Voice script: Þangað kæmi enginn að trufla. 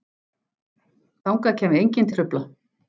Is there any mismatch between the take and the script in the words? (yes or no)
no